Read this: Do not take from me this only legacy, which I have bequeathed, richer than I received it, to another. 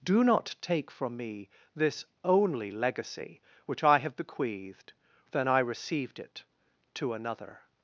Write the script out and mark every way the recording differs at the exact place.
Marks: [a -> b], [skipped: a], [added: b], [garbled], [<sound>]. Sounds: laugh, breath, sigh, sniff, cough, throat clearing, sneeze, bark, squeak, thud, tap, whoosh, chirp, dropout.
Do not take from me this only legacy, which I have bequeathed, [skipped: richer] than I received it, to another.